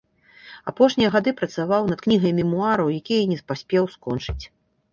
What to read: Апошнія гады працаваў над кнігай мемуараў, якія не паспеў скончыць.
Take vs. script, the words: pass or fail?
pass